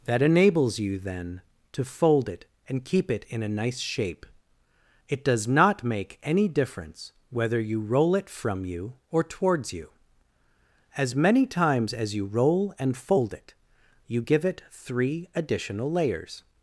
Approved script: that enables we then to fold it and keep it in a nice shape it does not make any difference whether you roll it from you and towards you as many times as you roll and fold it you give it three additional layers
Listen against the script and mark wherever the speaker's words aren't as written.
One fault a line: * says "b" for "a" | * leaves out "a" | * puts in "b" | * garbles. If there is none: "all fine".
* says "you" for "we"
* says "or" for "and"